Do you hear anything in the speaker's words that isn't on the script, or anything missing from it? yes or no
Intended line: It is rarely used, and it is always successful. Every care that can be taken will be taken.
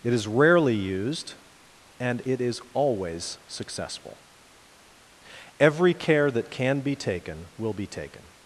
no